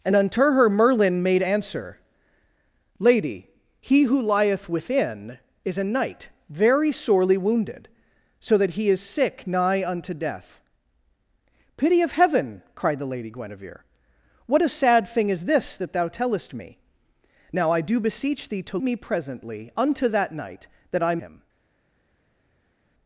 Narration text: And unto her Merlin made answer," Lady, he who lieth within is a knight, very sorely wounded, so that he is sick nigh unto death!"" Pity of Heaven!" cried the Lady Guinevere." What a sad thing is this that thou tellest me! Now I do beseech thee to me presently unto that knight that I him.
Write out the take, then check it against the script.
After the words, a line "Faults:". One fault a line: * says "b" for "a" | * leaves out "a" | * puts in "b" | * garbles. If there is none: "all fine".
And unto her Merlin made answer," Lady, he who lieth within is a knight, very sorely wounded, so that he is sick nigh unto death!"" Pity of Heaven!" cried the Lady Guinevere." What a sad thing is this that thou tellest me! Now I do beseech thee to me presently unto that knight that I him.
Faults:
all fine